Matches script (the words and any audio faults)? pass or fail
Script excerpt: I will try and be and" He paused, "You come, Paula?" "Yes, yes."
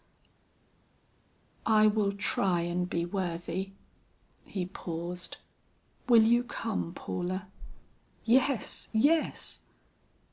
fail